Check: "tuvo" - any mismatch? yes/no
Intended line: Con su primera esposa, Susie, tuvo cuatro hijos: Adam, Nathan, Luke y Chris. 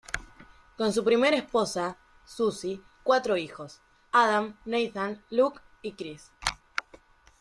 yes